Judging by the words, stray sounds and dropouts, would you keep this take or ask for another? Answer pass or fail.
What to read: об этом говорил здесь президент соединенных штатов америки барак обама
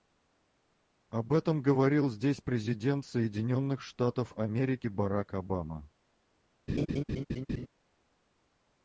fail